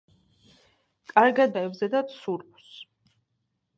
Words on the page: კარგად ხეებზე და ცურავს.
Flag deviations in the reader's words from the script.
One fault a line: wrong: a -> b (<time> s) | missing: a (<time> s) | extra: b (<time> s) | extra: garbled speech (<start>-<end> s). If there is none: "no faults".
no faults